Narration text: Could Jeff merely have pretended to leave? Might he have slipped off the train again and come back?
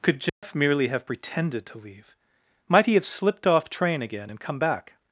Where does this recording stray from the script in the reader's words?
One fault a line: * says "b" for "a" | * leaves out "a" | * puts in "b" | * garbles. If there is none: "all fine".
* leaves out "the"